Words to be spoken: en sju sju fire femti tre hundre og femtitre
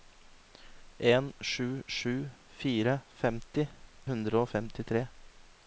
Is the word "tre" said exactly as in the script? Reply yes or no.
no